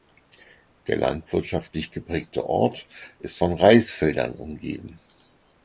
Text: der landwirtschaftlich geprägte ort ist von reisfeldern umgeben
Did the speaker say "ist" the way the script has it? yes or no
yes